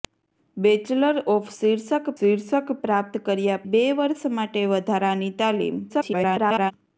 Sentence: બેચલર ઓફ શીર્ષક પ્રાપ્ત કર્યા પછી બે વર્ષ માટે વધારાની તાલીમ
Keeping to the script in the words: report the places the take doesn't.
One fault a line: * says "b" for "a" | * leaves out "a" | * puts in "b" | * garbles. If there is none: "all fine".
* puts in "શીર્ષક"
* leaves out "પછી"
* garbles